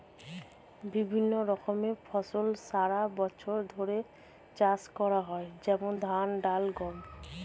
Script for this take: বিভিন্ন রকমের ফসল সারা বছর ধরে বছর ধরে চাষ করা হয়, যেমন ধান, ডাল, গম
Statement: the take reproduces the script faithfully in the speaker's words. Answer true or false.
false